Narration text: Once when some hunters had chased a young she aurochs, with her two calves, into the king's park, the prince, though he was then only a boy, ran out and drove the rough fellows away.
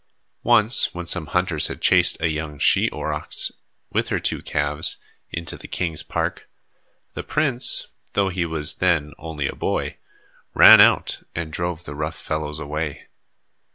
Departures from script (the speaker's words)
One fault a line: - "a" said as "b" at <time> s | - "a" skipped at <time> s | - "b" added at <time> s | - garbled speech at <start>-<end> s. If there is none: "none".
none